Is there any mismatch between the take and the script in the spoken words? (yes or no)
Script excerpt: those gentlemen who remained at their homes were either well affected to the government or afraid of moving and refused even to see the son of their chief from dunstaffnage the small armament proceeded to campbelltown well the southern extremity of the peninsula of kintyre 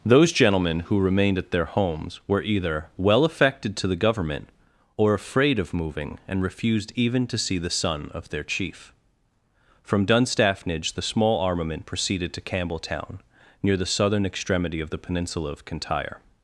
yes